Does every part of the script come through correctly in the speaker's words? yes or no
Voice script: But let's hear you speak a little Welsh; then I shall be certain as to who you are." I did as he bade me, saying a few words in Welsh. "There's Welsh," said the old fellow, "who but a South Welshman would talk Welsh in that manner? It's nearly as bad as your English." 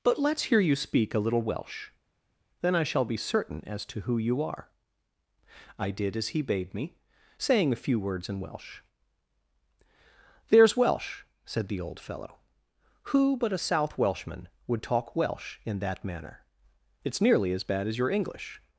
yes